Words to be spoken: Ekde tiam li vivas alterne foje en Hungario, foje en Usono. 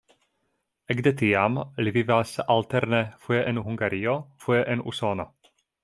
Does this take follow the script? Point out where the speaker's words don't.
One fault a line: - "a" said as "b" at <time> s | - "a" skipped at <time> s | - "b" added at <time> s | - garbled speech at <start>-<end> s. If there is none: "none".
none